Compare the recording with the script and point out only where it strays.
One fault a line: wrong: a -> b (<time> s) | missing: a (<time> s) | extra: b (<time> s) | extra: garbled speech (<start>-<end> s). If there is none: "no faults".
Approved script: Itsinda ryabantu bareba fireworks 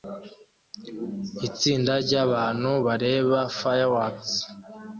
no faults